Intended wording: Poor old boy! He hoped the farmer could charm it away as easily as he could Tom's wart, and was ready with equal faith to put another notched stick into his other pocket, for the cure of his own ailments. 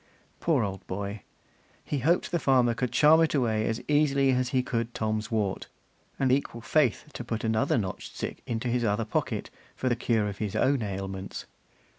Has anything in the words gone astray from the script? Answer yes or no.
yes